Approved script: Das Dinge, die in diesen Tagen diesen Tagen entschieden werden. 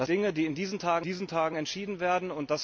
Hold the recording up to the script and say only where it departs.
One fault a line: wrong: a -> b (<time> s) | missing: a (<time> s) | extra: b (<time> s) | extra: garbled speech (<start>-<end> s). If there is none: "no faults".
no faults